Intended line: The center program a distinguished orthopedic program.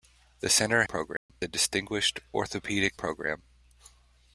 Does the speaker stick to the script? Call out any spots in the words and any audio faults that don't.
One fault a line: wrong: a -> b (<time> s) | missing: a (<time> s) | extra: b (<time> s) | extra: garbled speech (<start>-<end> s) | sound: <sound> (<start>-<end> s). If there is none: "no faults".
sound: dropout (1.2-1.3 s)